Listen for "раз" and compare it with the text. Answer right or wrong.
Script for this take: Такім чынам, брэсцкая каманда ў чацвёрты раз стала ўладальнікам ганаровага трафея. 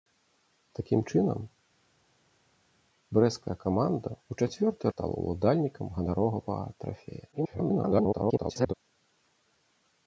wrong